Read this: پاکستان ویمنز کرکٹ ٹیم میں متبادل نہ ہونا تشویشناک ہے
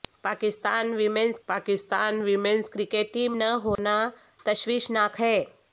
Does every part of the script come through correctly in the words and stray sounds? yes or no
no